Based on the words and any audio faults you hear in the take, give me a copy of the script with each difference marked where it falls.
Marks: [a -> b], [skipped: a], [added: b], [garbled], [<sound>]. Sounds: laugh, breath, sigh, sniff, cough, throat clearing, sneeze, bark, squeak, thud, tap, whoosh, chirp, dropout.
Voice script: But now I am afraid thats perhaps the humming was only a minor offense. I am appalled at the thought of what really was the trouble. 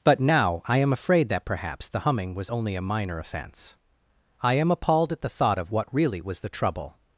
But now I am afraid [thats -> that] perhaps the humming was only a minor offense. I am appalled at the thought of what really was the trouble.